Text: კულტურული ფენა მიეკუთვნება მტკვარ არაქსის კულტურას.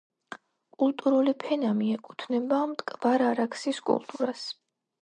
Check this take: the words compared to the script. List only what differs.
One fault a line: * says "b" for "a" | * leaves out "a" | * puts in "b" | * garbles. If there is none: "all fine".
all fine